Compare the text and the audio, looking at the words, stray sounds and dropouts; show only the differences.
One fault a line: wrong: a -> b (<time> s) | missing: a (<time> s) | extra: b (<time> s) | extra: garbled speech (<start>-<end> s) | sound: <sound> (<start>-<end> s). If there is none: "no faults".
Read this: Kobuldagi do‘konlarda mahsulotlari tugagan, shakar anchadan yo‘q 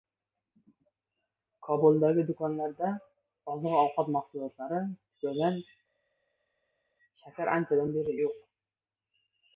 extra: oziq ovqat (3.5 s)
extra: beri (8.0 s)